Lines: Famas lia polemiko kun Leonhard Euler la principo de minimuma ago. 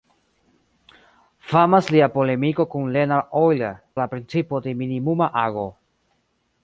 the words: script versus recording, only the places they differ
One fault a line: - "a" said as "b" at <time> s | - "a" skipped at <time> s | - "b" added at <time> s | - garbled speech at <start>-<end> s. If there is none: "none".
none